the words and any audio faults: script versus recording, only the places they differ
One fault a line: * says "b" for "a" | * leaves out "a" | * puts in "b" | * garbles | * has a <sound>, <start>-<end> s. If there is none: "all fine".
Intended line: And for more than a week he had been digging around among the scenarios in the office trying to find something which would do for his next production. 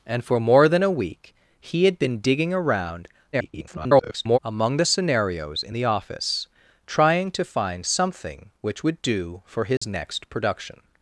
* garbles
* has a dropout, 9.8-9.8 s